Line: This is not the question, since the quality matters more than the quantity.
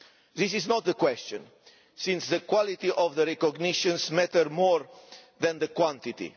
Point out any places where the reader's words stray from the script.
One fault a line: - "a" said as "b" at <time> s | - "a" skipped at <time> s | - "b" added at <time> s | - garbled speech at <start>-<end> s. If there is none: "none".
- "of the recognitions" added at 2.9 s